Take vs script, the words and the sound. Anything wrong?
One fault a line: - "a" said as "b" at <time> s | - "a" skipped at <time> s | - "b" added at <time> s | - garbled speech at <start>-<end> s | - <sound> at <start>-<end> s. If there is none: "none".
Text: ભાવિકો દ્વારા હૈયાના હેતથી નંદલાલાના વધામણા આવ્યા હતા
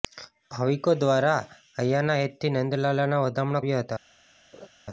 - laugh at 4.5-4.7 s